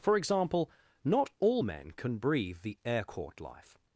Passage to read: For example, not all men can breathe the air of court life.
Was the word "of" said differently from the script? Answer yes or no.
yes